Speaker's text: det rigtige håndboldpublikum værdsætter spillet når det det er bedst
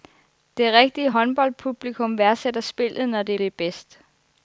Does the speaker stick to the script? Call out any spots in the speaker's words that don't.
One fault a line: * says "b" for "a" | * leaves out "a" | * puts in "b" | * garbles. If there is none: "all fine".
all fine